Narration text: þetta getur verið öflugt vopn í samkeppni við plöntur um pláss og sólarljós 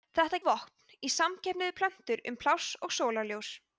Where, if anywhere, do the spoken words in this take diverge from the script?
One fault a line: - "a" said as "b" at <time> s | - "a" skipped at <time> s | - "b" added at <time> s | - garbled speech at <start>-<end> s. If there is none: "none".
- "getur verið öflugt" skipped at 0.4 s